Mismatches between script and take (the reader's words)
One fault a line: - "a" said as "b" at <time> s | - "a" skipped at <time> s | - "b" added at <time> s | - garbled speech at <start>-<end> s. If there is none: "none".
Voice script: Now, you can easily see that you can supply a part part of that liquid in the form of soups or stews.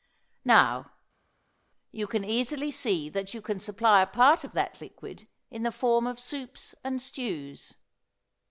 - "part" skipped at 4.4 s
- "or" said as "and" at 6.8 s